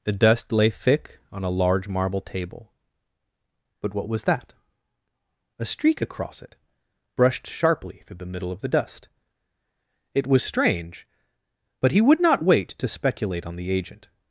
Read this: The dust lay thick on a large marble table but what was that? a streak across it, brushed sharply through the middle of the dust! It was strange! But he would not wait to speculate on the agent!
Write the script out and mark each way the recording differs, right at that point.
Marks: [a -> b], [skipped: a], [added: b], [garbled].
The dust lay thick on a large marble table but what was that? a streak across it, brushed sharply through the middle of the dust! It was strange! But he would not wait to speculate on the agent!